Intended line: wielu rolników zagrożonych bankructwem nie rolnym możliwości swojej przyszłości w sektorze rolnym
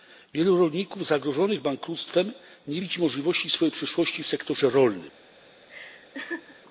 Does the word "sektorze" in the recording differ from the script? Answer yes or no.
no